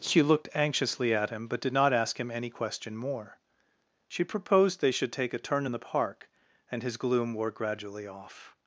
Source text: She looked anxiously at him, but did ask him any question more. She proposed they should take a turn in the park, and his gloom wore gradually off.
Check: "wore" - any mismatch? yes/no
no